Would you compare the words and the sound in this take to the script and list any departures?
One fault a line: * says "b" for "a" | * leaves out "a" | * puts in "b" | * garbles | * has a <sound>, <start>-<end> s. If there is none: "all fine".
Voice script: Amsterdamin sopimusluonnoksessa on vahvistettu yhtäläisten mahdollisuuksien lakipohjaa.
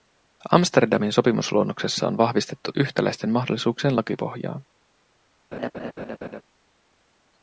* has a laugh, 5.5-6.4 s